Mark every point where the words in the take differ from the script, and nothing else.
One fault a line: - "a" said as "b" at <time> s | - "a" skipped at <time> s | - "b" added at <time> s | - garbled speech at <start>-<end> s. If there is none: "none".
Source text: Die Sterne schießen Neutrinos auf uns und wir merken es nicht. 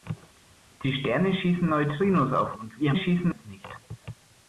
- "uns" skipped at 2.5 s
- "merken" said as "schießen" at 2.9 s